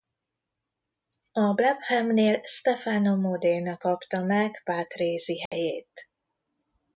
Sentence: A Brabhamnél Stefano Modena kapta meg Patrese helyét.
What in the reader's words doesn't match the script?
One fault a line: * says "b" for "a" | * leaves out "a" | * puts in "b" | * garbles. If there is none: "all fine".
all fine